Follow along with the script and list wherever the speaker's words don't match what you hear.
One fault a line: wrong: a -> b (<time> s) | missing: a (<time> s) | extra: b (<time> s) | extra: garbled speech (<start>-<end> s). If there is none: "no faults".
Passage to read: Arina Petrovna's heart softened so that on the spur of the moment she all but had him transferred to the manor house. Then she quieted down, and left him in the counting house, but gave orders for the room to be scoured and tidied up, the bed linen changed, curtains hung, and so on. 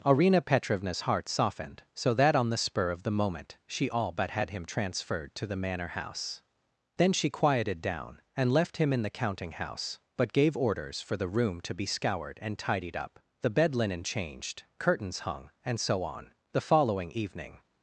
extra: The following evening (16.5 s)